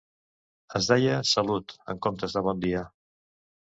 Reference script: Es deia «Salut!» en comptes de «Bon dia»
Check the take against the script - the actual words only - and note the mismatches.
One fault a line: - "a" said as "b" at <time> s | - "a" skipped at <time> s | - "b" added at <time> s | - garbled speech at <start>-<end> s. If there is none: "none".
none